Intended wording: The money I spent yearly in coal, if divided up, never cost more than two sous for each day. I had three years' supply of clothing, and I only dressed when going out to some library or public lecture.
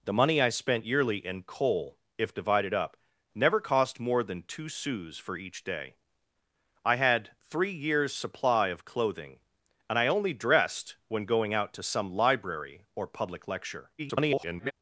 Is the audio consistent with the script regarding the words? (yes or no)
no